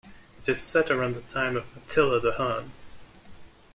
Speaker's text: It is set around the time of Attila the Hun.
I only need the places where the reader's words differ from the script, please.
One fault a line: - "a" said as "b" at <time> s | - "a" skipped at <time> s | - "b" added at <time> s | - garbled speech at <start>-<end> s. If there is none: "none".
none